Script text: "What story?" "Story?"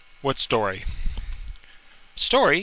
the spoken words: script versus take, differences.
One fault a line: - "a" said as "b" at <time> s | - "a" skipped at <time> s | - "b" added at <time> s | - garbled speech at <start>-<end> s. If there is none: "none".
none